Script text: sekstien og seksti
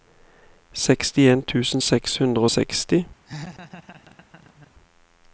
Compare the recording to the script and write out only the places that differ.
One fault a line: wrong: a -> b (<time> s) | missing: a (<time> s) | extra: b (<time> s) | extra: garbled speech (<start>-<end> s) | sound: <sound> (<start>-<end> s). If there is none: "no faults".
extra: tusen seks hundre (1.5 s)
sound: laugh (3.3-4.7 s)